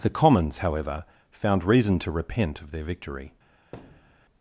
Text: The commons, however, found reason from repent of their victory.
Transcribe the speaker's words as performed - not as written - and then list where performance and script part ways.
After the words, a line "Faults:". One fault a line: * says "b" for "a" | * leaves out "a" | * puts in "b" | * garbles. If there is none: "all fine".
The commons, however, found reason to repent of their victory.
Faults:
* says "to" for "from"